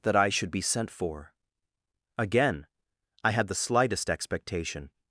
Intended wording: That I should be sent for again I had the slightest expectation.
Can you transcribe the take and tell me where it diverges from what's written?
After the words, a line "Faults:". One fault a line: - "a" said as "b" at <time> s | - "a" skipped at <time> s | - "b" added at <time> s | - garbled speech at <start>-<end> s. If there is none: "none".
That I should be sent for again I had the slightest expectation.
Faults:
none